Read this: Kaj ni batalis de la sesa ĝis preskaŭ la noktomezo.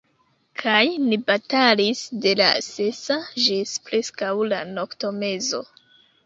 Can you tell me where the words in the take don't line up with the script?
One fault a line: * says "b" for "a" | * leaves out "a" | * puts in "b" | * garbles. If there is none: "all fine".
all fine